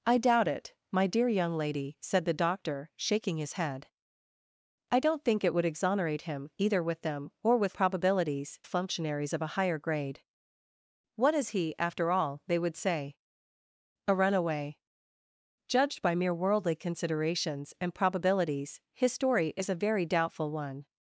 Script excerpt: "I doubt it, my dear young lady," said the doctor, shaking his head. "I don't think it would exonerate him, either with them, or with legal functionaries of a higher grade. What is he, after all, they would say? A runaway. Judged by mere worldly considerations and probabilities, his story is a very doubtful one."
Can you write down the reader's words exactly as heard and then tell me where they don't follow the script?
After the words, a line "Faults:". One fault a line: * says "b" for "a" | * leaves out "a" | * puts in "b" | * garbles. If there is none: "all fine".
"I doubt it, my dear young lady," said the doctor, shaking his head. "I don't think it would exonerate him, either with them, or with probabilities functionaries of a higher grade. What is he, after all, they would say? A runaway. Judged by mere worldly considerations and probabilities, his story is a very doubtful one."
Faults:
* says "probabilities" for "legal"